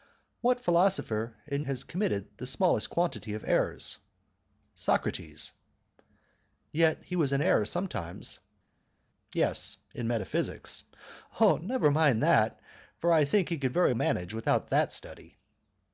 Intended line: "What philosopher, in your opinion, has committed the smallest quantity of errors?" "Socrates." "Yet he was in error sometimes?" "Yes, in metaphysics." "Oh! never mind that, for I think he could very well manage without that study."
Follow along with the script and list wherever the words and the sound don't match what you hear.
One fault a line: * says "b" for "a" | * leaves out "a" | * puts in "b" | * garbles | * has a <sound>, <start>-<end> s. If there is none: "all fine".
* leaves out "your opinion"
* leaves out "well"